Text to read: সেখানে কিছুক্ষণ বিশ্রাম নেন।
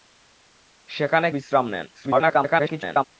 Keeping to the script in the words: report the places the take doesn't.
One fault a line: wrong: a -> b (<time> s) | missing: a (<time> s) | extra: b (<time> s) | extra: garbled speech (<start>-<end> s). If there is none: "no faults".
missing: কিছুক্ষণ (1.3 s)
extra: garbled speech (1.9-3.0 s)